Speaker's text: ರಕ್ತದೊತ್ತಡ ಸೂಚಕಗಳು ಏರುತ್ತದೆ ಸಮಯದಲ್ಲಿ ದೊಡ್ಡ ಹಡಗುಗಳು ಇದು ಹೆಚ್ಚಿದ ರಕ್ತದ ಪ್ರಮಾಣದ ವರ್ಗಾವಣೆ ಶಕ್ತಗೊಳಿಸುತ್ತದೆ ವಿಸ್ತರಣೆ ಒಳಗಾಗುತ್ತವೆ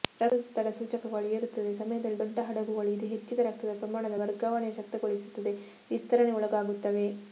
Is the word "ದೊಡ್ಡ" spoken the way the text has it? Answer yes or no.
yes